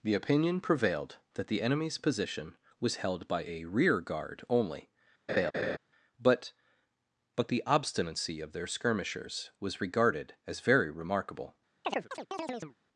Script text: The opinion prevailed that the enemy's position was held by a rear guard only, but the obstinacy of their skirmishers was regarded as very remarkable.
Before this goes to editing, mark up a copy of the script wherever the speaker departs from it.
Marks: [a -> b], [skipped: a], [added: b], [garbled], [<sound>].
The opinion prevailed that the enemy's position was held by a rear guard only, [laugh] but [added: but] the obstinacy of their skirmishers was regarded as very remarkable. [chirp]